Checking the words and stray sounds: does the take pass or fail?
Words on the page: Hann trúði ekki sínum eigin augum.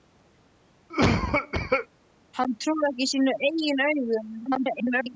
fail